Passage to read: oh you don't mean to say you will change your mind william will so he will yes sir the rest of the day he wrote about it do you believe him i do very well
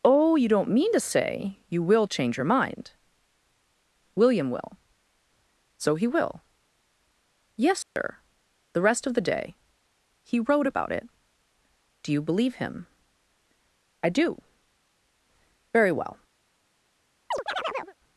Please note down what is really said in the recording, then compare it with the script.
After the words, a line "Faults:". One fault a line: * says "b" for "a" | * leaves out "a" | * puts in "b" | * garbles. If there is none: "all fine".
oh you don't mean to say you will change your mind william will so he will yes sir the rest of the day he wrote about it do you believe him i do very well
Faults:
all fine